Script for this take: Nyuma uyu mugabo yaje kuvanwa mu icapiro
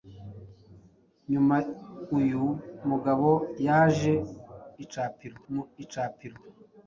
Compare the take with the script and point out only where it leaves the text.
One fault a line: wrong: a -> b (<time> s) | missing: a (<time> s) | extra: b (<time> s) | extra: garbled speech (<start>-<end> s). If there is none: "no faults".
wrong: kuvanwa -> icapiro (4.8 s)